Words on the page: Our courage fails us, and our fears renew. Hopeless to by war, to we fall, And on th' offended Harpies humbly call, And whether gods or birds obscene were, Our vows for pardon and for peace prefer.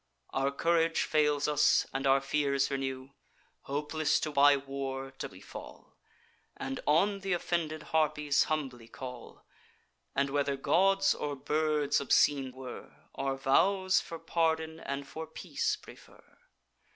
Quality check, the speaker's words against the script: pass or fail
pass